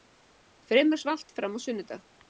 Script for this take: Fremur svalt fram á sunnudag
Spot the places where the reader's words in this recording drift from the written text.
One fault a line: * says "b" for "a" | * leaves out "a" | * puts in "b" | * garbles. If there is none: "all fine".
all fine